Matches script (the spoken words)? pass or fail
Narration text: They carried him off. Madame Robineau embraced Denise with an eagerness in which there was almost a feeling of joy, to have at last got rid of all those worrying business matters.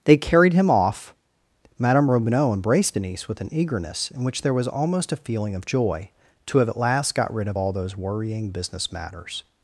pass